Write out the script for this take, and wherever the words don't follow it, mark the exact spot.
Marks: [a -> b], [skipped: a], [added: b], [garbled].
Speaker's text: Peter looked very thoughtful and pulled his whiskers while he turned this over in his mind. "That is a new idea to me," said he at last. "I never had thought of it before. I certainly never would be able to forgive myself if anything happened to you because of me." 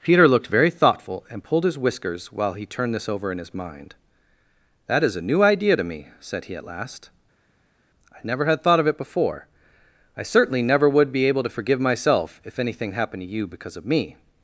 Peter looked very thoughtful and pulled his whiskers while he turned this over in his mind. "That is a new idea to me," said he at last. "I never had thought of it before. I certainly never would be able to forgive myself if anything happened to you because of me."